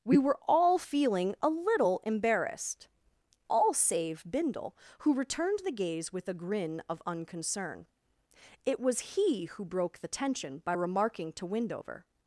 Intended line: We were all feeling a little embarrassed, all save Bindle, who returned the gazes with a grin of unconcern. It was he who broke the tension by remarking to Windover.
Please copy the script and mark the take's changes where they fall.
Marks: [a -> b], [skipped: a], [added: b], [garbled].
We were all feeling a little embarrassed, all save Bindle, who returned the [gazes -> gaze] with a grin of unconcern. It was he who broke the tension by remarking to Windover.